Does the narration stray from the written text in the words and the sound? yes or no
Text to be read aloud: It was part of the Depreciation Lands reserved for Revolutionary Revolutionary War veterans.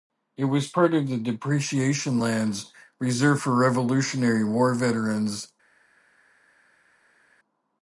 yes